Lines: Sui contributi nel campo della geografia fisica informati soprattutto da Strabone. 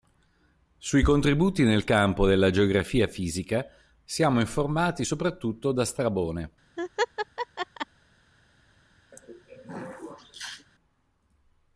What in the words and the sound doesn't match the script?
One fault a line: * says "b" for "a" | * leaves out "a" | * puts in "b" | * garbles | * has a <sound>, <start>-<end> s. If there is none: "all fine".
* puts in "siamo"
* has a laugh, 6.8-7.9 s
* has a throat clearing, 9.1-10.7 s